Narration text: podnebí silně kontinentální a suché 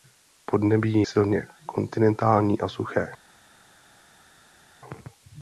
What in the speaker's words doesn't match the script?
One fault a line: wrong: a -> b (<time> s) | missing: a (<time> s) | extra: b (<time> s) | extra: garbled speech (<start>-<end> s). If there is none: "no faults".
no faults